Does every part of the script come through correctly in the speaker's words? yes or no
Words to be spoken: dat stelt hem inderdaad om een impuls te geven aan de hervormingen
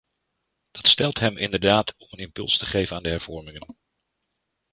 yes